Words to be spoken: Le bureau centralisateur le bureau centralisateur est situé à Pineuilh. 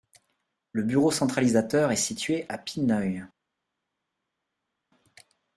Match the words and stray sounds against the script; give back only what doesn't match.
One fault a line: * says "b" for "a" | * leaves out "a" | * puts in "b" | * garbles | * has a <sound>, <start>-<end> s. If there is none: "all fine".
* leaves out "le bureau centralisateur"